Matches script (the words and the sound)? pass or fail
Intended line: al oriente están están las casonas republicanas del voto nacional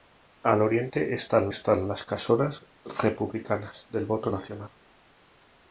pass